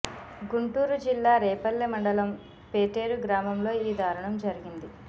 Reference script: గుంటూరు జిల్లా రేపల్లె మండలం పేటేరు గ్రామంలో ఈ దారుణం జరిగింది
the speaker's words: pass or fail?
pass